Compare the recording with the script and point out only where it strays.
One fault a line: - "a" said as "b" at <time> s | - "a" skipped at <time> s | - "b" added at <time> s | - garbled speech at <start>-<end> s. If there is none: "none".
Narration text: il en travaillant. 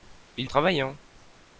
none